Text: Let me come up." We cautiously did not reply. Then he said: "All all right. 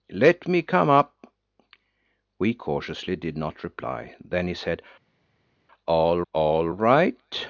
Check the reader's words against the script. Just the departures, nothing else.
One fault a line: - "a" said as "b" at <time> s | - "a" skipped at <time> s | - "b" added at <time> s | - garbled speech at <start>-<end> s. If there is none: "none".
none